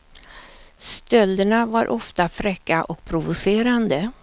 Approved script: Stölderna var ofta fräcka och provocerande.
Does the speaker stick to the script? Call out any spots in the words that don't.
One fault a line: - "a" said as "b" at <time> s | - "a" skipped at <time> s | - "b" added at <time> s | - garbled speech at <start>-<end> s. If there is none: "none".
none